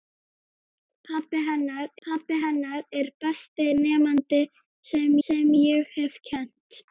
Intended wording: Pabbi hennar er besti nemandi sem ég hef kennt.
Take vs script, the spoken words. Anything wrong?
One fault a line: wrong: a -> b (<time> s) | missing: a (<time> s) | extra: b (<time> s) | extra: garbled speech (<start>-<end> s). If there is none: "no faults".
extra: pabbi hennar (2.1 s)
extra: sem (5.3 s)